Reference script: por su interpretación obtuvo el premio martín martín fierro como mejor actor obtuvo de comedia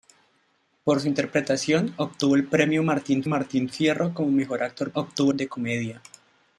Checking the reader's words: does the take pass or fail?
pass